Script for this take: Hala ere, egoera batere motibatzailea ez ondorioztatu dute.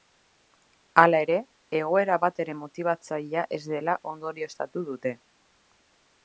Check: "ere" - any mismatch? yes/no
no